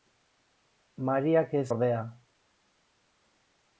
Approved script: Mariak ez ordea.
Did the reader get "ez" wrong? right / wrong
right